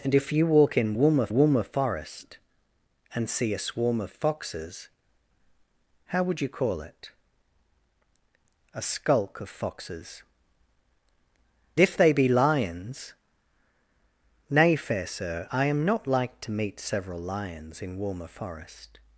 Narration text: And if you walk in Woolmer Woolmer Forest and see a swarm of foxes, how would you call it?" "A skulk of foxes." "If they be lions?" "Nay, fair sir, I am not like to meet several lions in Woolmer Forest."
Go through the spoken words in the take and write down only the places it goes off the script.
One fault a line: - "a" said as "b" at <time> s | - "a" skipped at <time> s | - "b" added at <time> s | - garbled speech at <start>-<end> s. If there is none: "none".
none